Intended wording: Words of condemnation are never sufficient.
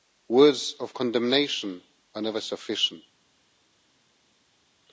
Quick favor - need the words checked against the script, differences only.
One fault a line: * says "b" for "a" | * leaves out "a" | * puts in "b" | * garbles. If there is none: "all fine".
all fine